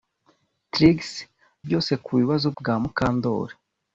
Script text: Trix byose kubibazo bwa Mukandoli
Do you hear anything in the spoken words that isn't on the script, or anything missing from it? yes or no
no